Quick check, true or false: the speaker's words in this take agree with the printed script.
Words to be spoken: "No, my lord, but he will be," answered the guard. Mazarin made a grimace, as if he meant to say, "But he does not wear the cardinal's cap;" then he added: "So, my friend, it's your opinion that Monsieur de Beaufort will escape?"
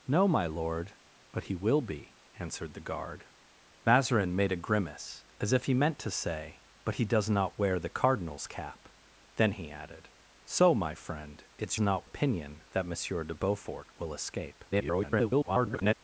false